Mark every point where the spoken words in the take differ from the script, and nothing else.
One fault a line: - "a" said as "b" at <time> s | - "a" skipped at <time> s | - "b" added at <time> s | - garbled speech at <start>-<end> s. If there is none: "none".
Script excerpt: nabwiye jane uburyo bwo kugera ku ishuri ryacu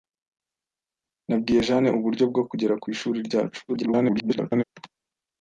- garbled speech at 3.7-4.6 s